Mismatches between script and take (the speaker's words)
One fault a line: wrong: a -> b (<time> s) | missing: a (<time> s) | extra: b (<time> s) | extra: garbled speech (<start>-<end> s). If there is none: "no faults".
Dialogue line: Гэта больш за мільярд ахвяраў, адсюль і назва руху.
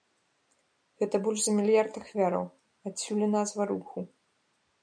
no faults